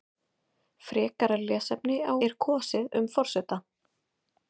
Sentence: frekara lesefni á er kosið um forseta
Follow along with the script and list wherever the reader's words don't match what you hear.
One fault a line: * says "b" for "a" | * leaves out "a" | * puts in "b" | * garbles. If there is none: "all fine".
all fine